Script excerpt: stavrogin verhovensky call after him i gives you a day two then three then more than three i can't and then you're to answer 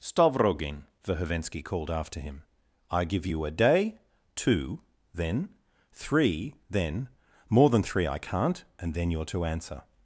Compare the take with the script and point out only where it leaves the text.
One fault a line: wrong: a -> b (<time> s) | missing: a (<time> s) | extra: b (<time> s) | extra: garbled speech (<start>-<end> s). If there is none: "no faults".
wrong: call -> called (1.6 s)
wrong: gives -> give (3.0 s)